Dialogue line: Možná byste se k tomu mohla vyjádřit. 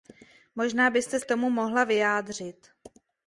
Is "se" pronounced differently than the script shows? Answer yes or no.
yes